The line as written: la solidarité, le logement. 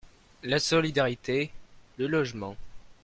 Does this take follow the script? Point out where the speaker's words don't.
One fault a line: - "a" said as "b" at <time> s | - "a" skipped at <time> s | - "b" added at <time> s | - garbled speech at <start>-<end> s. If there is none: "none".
none